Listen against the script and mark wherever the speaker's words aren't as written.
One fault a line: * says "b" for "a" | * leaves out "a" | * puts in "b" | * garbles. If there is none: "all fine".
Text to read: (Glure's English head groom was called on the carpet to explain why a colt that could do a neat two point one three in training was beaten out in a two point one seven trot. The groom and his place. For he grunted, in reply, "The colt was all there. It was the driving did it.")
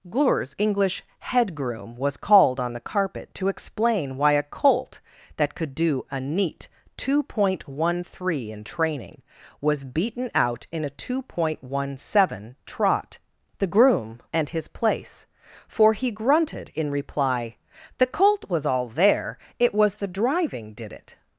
all fine